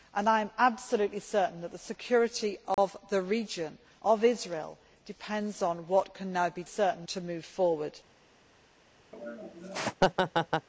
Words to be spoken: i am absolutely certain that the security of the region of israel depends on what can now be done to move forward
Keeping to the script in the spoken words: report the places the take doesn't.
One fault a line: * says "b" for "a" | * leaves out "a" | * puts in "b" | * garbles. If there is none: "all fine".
* says "certain" for "done"